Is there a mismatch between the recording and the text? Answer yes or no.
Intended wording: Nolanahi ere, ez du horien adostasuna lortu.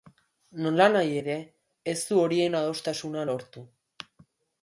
no